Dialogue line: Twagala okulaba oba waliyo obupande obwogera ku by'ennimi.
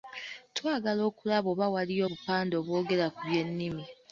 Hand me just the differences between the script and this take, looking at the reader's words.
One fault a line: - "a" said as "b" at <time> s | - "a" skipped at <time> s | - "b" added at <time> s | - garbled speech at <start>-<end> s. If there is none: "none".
none